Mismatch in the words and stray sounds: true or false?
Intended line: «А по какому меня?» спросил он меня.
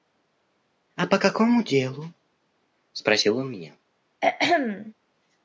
true